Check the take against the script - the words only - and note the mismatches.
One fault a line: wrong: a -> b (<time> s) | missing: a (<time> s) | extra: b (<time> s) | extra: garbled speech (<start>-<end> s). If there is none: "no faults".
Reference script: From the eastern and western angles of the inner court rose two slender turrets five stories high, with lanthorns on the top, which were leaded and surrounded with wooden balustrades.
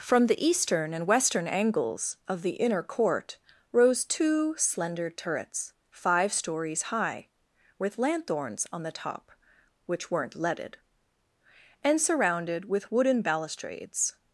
wrong: were -> weren't (10.1 s)